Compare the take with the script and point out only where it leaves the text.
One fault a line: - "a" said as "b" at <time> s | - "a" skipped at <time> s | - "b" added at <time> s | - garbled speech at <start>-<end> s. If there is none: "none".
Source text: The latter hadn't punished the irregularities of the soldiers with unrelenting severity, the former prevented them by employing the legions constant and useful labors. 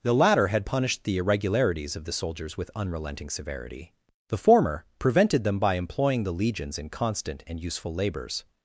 - "hadn't" said as "had" at 0.5 s
- "in" added at 6.8 s